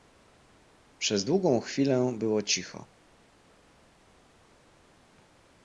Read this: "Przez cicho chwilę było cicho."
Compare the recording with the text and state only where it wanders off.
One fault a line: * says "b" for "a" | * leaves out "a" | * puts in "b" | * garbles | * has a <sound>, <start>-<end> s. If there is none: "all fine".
* says "długą" for "cicho"